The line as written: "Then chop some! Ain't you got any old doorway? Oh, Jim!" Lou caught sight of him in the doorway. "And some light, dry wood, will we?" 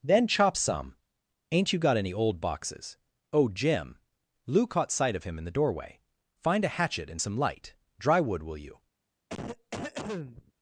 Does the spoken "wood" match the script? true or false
true